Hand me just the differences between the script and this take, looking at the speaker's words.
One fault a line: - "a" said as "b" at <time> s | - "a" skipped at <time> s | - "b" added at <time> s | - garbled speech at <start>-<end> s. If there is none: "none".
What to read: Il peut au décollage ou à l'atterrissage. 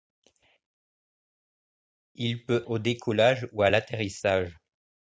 none